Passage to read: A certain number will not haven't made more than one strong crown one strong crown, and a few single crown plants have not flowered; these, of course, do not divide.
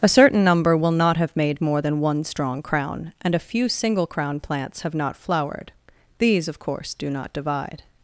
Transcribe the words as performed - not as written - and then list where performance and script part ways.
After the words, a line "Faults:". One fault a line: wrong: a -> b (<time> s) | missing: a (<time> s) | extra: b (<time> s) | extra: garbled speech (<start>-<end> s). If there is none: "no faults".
A certain number will not have made more than one strong crown, and a few single crown plants have not flowered; these, of course, do not divide.
Faults:
wrong: haven't -> have (1.2 s)
missing: one strong crown (3.1 s)